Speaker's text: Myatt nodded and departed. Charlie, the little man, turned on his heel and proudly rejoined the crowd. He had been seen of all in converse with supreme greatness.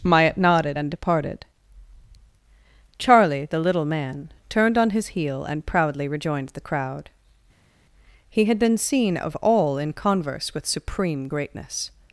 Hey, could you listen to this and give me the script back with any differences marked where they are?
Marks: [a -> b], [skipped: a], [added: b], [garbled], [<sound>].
Myatt nodded and departed. Charlie, the little man, turned on his heel and proudly rejoined the crowd. He had been seen of all in converse with supreme greatness.